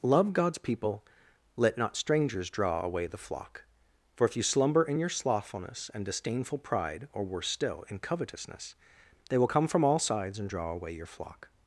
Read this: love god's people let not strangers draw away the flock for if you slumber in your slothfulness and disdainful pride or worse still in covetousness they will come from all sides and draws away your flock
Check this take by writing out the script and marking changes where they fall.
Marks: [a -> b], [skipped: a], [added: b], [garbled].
love god's people let not strangers draw away the flock for if you slumber in your slothfulness and disdainful pride or worse still in covetousness they will come from all sides and [draws -> draw] away your flock